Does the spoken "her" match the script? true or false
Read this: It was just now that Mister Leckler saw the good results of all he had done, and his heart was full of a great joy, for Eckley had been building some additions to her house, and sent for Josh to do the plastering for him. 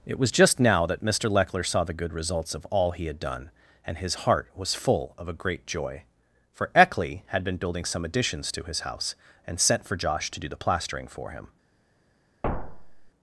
false